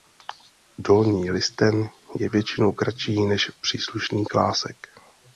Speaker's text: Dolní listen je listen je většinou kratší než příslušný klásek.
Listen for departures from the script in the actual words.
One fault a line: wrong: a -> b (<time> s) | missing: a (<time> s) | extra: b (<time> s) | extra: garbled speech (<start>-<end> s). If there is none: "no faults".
missing: listen je (2.3 s)